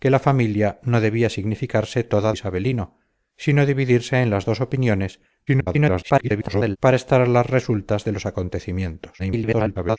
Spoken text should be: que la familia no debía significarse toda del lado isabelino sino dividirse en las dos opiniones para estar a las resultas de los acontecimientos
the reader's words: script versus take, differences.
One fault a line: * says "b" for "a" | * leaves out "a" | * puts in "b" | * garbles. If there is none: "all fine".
* leaves out "del lado"
* garbles
* garbles